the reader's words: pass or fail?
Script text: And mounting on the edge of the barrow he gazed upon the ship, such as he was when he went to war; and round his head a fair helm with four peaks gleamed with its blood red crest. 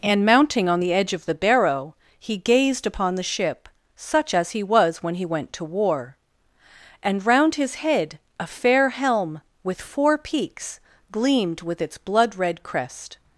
pass